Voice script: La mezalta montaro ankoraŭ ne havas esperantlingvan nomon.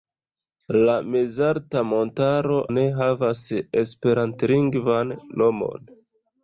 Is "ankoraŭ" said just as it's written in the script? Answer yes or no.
no